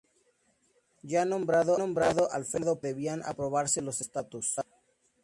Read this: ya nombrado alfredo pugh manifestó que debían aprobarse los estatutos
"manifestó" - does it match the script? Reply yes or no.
no